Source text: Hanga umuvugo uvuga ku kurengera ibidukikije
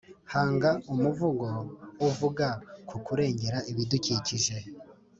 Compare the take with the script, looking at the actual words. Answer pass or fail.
pass